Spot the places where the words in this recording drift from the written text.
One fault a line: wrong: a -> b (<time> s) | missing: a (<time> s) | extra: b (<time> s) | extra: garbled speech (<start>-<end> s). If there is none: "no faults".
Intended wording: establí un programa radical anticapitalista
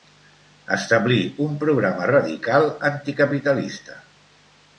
no faults